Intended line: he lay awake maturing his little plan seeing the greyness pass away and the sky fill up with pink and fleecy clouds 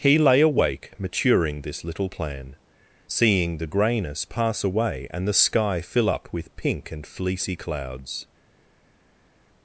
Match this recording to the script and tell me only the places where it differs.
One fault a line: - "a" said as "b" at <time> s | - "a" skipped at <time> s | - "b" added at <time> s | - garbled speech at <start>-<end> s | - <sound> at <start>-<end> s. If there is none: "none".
- "his" said as "this" at 1.6 s